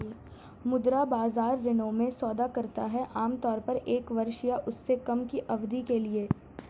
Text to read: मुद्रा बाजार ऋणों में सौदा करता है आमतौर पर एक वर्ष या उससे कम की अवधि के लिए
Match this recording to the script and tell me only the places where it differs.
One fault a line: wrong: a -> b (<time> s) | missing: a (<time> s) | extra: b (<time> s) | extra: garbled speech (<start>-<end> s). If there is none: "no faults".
no faults